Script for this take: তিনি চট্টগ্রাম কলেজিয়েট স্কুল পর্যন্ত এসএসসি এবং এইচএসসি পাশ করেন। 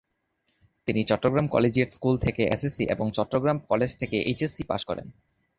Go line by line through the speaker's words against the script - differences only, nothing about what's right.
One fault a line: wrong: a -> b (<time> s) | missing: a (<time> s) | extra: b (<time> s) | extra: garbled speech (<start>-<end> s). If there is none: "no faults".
wrong: পর্যন্ত -> থেকে (2.2 s)
extra: চট্টগ্রাম কলেজ থেকে (3.1 s)